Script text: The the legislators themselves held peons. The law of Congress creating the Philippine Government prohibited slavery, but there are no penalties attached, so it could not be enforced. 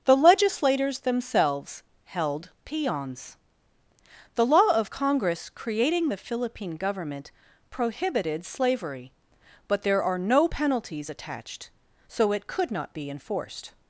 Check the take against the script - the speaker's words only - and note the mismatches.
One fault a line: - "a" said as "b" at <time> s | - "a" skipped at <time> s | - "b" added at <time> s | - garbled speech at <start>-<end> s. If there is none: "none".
- "the" skipped at 0.2 s